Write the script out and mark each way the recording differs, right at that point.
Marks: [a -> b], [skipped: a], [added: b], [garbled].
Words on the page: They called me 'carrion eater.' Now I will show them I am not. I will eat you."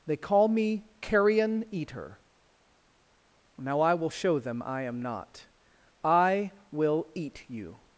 They [called -> call] me 'carrion eater.' Now I will show them I am not. I will eat you."